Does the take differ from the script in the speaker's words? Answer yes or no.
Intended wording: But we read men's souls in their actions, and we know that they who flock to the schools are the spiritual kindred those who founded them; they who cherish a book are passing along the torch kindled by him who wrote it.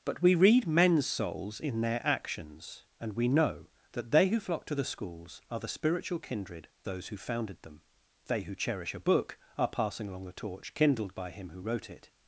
no